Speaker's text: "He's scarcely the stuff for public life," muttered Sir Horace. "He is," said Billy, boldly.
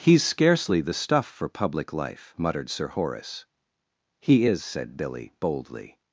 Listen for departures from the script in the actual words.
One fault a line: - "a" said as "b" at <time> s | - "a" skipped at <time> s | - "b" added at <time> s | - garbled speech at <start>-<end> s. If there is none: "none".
none